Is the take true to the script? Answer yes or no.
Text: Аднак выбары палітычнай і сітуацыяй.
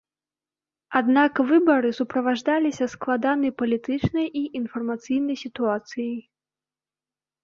no